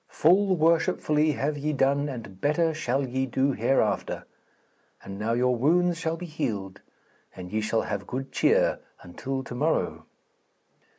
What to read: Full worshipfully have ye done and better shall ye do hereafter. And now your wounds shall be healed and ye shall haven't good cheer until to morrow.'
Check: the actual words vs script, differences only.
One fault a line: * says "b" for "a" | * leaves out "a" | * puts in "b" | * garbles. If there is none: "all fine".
* says "have" for "haven't"